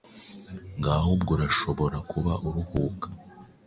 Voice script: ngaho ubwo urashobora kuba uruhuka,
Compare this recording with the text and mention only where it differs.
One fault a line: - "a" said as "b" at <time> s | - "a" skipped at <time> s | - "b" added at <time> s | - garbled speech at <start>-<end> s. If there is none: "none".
none